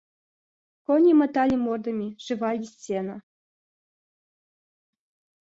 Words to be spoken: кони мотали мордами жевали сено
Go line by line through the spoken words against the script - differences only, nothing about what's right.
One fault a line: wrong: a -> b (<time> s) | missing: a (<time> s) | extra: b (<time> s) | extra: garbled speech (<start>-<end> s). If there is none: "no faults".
no faults